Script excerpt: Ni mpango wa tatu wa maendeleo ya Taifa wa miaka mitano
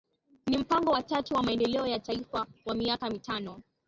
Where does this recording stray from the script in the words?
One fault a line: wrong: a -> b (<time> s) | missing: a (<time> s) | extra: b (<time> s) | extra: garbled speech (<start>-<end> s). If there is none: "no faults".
no faults